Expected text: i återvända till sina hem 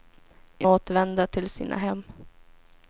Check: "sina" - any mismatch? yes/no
no